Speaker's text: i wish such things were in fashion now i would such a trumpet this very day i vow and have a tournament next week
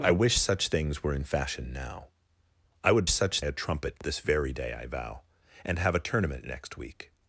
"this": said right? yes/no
yes